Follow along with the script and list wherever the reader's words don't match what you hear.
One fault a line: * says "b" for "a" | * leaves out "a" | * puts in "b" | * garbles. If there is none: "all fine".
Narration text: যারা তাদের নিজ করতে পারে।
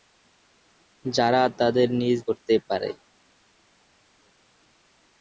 all fine